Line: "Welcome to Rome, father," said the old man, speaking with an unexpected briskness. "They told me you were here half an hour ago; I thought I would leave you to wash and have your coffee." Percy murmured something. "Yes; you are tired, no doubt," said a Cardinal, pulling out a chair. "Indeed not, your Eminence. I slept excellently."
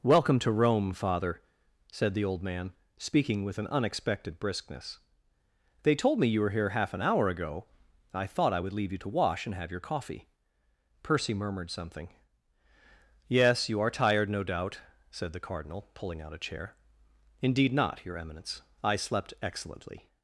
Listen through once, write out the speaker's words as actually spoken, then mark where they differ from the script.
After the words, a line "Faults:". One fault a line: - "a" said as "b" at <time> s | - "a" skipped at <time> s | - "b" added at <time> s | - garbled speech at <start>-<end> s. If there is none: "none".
"Welcome to Rome, father," said the old man, speaking with an unexpected briskness. "They told me you were here half an hour ago; I thought I would leave you to wash and have your coffee." Percy murmured something. "Yes; you are tired, no doubt," said the Cardinal, pulling out a chair. "Indeed not, your Eminence. I slept excellently."
Faults:
- "a" said as "the" at 15.3 s